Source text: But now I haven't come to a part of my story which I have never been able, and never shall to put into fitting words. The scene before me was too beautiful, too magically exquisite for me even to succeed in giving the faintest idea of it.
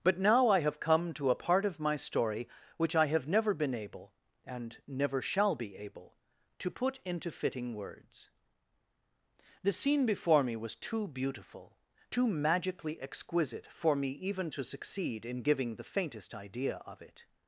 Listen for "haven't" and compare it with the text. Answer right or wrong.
wrong